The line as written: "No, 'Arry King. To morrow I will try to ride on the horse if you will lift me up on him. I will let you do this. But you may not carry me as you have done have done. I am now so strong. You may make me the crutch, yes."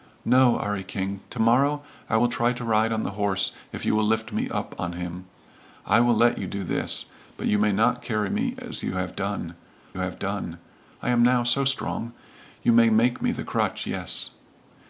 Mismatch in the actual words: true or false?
false